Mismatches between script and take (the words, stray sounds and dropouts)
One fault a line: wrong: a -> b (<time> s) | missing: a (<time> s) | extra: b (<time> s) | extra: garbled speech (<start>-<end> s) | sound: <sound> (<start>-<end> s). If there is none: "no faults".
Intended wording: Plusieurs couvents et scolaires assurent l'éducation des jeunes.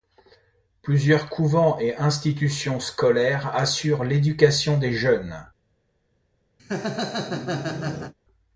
extra: institutions (1.9 s)
sound: laugh (6.6-8.1 s)